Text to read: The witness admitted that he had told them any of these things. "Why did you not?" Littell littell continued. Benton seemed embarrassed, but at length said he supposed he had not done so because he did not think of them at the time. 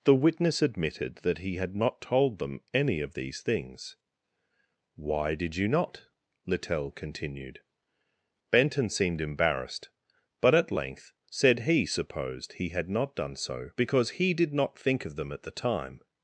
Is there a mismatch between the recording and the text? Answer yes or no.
yes